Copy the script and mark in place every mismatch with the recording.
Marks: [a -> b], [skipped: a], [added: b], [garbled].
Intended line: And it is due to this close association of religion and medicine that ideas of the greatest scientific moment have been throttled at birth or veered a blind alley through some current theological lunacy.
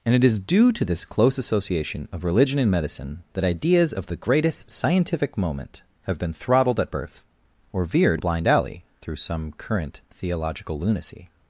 And it is due to this close association of religion and medicine that ideas of the greatest scientific moment have been throttled at birth or veered a blind alley through some current theological lunacy.